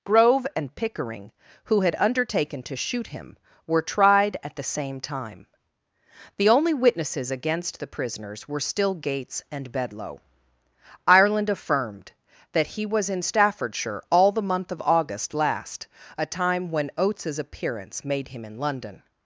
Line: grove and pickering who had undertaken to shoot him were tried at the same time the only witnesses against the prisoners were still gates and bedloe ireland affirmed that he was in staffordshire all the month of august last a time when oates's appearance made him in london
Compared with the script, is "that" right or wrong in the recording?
right